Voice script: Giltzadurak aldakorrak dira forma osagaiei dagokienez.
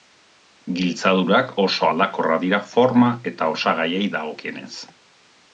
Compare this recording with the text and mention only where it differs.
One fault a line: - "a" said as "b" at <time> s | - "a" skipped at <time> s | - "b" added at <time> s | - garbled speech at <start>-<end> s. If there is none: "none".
- "oso" added at 1.6 s
- "eta" added at 3.3 s